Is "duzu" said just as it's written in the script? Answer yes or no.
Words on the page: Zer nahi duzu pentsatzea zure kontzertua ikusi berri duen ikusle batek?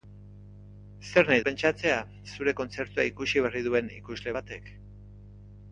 no